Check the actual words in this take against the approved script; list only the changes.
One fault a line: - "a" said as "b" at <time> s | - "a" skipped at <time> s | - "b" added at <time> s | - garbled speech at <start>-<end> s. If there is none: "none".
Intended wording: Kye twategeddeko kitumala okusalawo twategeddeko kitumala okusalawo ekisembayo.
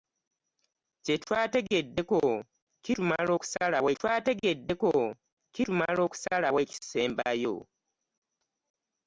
none